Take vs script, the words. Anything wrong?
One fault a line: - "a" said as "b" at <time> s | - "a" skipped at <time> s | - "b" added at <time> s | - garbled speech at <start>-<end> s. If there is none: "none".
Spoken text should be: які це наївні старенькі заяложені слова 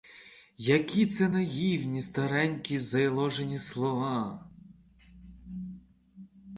none